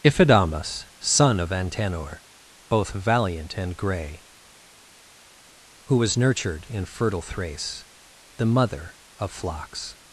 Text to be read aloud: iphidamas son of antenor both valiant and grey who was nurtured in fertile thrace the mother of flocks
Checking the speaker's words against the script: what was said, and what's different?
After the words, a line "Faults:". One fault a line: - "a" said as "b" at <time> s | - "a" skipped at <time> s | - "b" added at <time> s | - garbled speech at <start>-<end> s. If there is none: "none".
iphidamas son of antenor both valiant and grey who was nurtured in fertile thrace the mother of flocks
Faults:
none